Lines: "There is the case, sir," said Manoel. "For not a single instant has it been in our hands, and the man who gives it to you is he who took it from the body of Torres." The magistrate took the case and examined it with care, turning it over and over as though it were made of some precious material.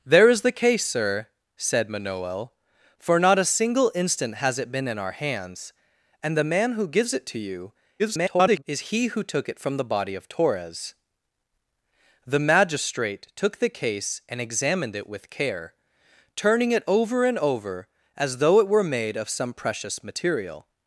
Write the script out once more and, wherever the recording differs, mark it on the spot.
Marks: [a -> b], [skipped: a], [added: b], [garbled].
"There is the case, sir," said Manoel. "For not a single instant has it been in our hands, and the man who gives it to you [garbled] is he who took it from the body of Torres." The magistrate took the case and examined it with care, turning it over and over as though it were made of some precious material.